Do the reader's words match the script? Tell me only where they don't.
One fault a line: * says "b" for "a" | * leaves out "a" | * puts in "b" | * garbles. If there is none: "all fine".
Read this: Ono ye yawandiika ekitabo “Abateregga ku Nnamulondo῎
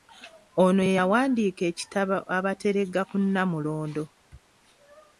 all fine